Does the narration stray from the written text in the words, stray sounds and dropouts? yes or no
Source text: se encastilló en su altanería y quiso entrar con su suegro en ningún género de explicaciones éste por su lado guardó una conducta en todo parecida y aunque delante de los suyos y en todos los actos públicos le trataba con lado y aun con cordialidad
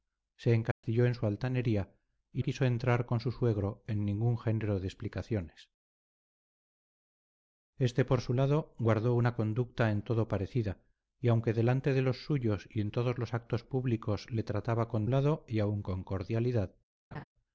yes